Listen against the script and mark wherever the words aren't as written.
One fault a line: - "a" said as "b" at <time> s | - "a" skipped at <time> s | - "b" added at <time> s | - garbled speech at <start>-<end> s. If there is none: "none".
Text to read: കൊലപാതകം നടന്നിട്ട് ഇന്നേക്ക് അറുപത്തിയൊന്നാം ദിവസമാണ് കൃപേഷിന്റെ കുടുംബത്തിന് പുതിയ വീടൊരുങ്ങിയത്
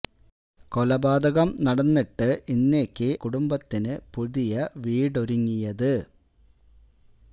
- "അറുപത്തിയൊന്നാം ദിവസമാണ് കൃപേഷിന്റെ" skipped at 3.1 s